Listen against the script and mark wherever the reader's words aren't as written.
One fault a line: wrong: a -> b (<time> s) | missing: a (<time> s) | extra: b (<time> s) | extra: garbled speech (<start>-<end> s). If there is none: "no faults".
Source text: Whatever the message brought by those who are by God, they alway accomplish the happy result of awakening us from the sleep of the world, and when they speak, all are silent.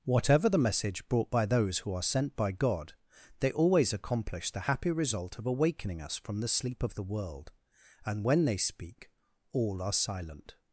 extra: sent (2.0 s)
wrong: alway -> always (3.5 s)